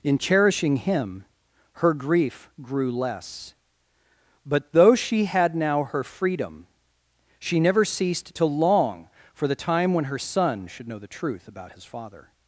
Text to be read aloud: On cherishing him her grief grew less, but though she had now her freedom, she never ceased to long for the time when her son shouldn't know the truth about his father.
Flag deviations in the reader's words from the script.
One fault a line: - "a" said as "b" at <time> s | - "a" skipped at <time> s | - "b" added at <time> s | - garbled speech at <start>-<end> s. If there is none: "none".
- "On" said as "In" at 0.0 s
- "shouldn't" said as "should" at 10.7 s